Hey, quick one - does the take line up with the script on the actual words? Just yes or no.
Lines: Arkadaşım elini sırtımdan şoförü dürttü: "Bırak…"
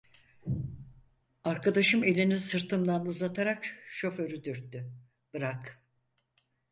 no